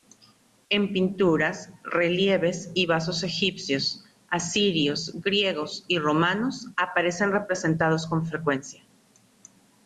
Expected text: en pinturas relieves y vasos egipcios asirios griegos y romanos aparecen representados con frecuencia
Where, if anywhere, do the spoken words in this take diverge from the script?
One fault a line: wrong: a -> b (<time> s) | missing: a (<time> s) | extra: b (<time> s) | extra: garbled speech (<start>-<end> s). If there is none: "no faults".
no faults